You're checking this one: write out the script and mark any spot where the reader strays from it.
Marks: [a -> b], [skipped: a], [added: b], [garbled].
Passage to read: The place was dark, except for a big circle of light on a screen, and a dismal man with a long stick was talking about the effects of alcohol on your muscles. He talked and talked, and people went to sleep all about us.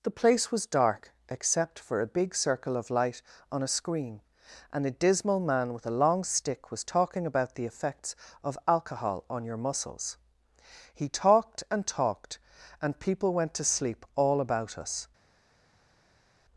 The place was dark, except for a big circle of light on a screen, and a dismal man with a long stick was talking about the effects of alcohol on your muscles. He talked and talked, and people went to sleep all about us.